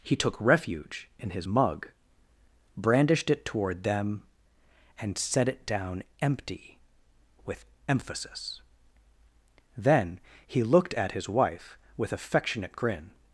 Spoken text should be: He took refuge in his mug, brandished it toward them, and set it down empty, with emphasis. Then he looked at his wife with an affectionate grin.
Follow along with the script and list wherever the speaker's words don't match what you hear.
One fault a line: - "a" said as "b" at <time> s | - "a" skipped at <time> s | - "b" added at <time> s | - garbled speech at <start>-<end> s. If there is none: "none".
- "an" skipped at 12.1 s